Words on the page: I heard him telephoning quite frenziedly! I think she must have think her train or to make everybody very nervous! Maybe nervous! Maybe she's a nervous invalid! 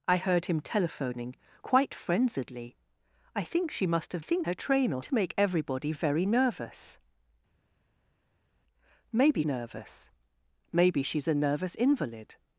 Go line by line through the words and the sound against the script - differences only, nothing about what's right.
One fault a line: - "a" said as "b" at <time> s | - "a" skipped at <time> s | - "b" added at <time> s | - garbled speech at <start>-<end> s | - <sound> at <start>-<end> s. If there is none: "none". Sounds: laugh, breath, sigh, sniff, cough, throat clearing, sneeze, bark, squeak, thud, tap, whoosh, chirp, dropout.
none